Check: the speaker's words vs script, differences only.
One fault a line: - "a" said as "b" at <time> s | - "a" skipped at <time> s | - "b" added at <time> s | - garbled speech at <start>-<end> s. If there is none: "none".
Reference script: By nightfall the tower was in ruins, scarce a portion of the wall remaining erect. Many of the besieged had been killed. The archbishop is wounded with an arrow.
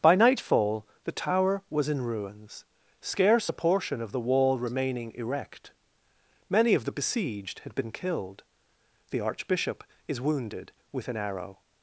none